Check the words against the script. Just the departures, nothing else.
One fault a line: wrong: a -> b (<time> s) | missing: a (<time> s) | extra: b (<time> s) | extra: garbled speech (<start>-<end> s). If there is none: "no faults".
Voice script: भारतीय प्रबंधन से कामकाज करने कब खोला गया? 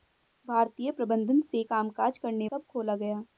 no faults